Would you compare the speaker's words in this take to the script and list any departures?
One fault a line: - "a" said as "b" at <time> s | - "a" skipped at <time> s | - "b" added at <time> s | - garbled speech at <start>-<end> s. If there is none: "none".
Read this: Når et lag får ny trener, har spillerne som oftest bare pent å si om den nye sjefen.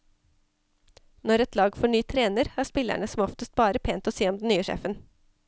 none